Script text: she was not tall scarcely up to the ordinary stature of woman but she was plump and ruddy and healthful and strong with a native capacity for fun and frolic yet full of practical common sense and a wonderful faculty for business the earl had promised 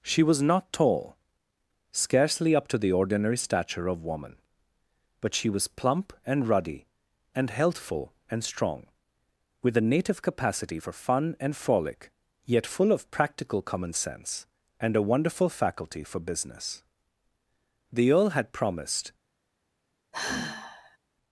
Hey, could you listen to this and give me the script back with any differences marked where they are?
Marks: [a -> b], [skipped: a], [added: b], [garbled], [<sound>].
she was not tall scarcely up to the ordinary stature of woman but she was plump and ruddy and healthful and strong with a native capacity for fun and frolic yet full of practical common sense and a wonderful faculty for business the earl had promised [sigh]